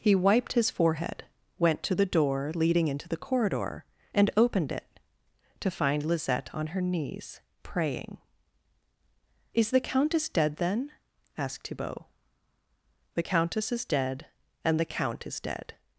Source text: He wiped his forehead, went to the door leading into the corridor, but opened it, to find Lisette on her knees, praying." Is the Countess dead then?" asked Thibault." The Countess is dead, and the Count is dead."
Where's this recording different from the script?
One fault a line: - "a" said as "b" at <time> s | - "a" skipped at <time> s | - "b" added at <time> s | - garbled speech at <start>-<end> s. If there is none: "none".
- "but" said as "and" at 4.2 s